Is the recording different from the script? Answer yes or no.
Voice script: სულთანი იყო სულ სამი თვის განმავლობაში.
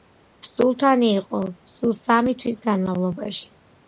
no